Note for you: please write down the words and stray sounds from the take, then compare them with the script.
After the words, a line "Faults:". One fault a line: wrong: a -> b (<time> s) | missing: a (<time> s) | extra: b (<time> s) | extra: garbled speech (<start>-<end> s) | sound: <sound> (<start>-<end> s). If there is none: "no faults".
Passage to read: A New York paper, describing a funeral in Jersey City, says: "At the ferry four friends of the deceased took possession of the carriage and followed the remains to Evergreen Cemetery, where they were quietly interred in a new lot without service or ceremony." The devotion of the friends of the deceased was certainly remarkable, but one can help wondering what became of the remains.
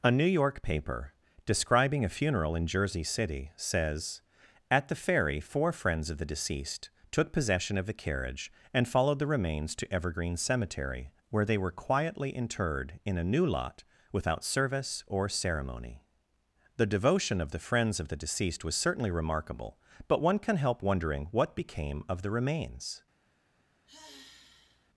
A New York paper, describing a funeral in Jersey City, says: "At the ferry four friends of the deceased took possession of the carriage and followed the remains to Evergreen Cemetery, where they were quietly interred in a new lot without service or ceremony." The devotion of the friends of the deceased was certainly remarkable, but one can help wondering what became of the remains.
Faults:
sound: sigh (23.9-24.9 s)